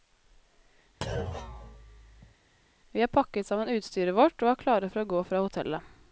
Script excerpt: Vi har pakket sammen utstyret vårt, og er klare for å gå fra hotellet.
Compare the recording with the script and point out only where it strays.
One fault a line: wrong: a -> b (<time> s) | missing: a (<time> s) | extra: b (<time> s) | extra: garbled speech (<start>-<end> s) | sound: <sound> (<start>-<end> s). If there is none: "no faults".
sound: thud (1.0-2.4 s)